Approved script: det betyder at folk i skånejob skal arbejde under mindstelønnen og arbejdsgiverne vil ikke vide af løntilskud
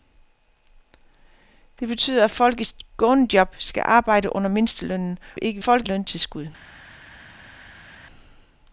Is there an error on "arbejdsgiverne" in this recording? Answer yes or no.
yes